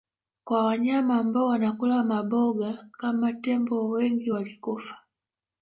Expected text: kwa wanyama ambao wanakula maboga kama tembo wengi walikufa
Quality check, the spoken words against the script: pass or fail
pass